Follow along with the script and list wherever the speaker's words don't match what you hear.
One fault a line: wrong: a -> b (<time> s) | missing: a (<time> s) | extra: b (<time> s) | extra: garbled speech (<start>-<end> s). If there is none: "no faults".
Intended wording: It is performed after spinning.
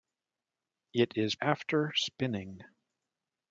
missing: performed (1.4 s)